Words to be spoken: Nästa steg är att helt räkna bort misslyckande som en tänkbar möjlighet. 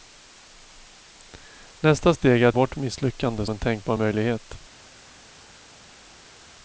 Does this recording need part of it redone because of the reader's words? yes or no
yes